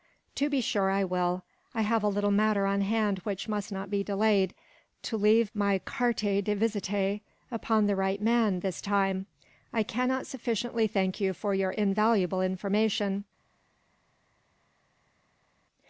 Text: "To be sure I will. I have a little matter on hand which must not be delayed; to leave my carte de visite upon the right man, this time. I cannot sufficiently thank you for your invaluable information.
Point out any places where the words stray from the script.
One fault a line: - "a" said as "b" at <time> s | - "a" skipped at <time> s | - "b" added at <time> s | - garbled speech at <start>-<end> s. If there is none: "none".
none